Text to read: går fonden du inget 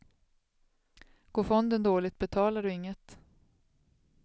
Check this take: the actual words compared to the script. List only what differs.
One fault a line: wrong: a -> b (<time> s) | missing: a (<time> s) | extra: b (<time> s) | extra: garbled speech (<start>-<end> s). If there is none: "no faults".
extra: dåligt betalar (1.8 s)